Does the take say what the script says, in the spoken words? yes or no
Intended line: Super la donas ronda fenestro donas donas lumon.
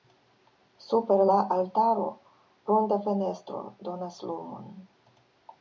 no